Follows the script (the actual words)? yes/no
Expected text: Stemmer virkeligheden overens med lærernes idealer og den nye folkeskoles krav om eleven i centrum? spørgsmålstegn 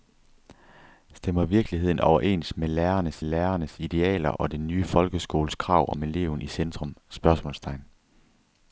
no